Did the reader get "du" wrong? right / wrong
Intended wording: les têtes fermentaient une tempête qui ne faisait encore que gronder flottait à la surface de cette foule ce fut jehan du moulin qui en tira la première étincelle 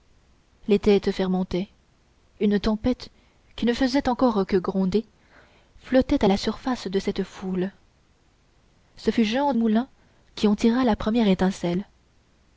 wrong